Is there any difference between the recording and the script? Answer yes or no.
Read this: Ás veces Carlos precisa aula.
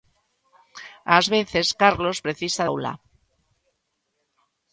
no